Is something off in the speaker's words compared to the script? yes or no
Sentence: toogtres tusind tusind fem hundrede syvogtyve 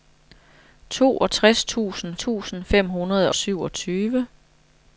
no